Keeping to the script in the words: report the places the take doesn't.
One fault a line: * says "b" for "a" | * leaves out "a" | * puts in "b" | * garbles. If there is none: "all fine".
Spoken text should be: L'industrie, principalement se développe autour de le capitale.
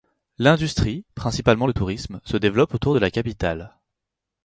* puts in "le tourisme"
* says "la" for "le"